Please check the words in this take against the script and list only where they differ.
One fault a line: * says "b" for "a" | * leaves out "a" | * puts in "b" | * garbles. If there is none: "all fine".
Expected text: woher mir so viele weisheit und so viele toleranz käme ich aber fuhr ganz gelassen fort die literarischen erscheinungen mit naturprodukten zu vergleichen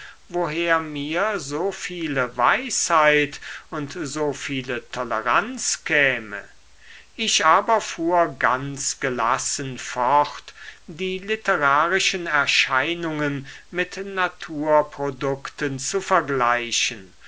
all fine